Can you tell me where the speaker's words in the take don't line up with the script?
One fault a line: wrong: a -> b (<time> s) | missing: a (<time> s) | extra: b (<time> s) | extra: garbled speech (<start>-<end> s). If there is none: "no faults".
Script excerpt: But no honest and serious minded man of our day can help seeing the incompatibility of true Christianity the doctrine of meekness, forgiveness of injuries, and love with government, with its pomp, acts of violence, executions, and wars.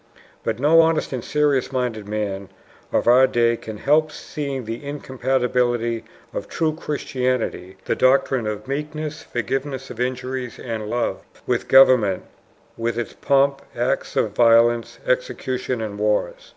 no faults